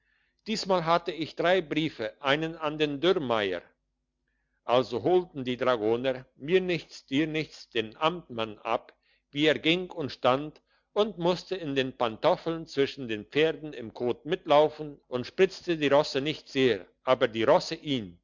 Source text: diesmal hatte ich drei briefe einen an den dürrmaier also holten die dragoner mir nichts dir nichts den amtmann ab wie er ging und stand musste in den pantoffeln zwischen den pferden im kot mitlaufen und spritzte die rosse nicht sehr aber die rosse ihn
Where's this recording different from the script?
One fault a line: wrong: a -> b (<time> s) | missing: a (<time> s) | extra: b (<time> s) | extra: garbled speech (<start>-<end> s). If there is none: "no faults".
extra: und (10.9 s)